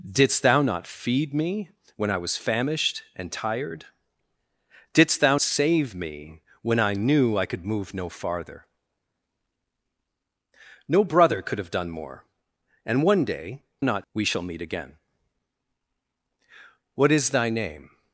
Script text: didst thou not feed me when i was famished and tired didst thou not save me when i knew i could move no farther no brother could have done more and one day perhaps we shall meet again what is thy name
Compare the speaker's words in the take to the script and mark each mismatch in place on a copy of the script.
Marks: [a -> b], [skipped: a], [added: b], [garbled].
didst thou not feed me when i was famished and tired didst thou [skipped: not] save me when i knew i could move no farther no brother could have done more and one day [perhaps -> not] we shall meet again what is thy name